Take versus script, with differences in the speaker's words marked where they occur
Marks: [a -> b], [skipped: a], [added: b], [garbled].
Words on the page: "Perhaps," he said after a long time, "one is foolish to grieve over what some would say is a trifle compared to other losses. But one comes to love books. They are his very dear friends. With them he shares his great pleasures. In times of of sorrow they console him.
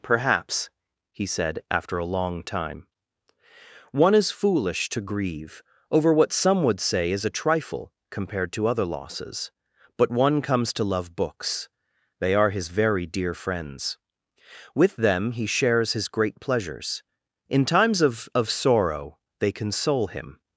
"Perhaps," he said after a long time, "one is foolish to grieve over what some would say is a trifle compared to other losses. But one comes to love books. They are his very dear friends. With them he shares his great pleasures. In times of of sorrow they console him.